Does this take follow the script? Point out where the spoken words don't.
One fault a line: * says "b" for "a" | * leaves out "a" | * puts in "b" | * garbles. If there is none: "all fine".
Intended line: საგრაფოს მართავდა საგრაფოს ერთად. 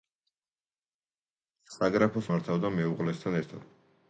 * says "მეუღლესთან" for "საგრაფოს"